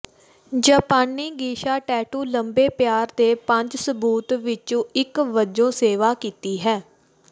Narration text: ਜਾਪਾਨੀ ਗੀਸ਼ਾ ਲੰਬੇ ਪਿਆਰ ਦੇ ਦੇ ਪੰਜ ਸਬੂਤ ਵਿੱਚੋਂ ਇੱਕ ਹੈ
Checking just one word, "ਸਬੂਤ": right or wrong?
right